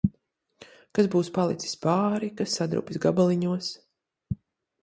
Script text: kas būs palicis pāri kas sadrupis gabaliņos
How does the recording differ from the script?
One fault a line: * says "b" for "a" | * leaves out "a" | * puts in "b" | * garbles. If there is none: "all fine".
all fine